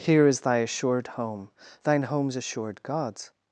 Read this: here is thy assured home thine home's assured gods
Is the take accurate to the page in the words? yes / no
yes